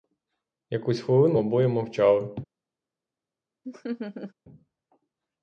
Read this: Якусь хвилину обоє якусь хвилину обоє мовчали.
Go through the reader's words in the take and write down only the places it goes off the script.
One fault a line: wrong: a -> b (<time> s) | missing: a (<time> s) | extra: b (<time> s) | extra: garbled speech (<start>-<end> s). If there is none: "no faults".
missing: якусь хвилину обоє (1.7 s)